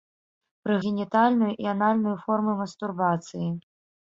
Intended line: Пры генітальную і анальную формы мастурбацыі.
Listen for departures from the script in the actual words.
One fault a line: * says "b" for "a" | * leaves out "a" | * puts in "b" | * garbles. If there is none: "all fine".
all fine